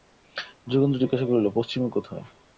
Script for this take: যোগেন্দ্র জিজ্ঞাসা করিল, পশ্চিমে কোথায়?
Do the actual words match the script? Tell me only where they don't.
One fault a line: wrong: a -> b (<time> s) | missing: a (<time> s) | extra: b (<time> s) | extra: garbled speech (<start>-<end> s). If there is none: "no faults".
no faults